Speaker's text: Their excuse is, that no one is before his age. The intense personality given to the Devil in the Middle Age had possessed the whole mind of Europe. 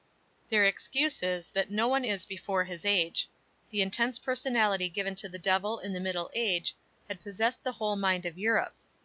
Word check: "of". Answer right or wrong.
right